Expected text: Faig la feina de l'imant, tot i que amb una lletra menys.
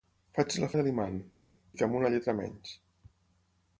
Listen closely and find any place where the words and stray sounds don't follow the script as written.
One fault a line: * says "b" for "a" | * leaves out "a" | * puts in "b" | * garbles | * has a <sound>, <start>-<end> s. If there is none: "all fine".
* leaves out "feina"
* leaves out "tot"